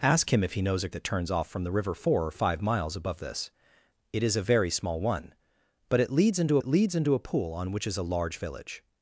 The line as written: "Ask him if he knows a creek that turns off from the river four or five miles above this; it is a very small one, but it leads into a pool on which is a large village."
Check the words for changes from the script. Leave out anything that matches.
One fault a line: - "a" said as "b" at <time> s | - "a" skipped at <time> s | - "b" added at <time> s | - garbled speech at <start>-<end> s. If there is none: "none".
- "creek" skipped at 0.9 s
- "it leads into" added at 6.6 s